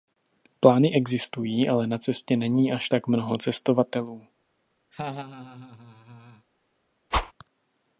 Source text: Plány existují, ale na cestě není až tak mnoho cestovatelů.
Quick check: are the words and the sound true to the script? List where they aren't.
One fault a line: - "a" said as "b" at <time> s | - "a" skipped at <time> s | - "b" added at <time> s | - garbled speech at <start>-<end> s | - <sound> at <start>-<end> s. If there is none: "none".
- laugh at 4.9-6.5 s
- whoosh at 7.1-7.3 s